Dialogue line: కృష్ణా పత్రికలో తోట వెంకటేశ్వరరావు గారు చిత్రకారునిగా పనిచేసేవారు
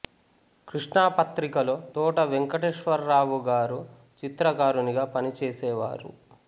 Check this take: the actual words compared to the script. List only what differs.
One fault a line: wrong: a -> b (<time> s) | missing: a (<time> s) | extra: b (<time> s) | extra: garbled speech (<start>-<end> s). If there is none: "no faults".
no faults